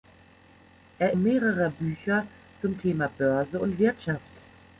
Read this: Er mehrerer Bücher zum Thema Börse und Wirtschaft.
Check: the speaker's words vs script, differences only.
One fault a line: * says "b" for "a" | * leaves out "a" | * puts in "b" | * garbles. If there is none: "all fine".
all fine